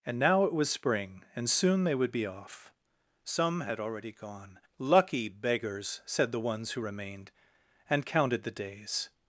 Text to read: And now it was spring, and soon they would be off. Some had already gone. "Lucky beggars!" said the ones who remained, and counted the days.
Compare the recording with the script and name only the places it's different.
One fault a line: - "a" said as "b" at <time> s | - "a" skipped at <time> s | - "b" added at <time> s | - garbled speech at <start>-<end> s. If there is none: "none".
none